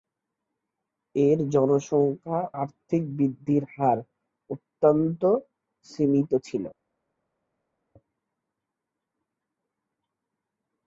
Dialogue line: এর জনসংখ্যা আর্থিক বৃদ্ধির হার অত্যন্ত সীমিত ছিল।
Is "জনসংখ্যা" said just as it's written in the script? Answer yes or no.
yes